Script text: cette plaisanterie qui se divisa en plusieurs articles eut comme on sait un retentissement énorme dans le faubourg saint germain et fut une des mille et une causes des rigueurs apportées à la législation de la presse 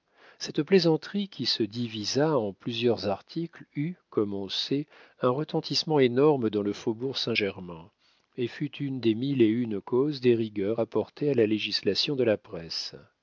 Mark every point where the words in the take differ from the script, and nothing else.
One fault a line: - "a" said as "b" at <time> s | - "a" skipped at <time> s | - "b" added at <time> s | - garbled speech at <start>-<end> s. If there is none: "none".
none